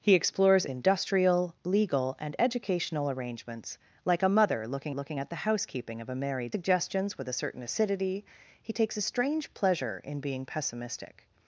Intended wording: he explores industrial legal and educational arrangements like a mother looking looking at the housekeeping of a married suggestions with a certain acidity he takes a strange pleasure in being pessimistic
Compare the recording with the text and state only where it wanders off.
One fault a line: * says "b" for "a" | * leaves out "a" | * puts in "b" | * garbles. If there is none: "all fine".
all fine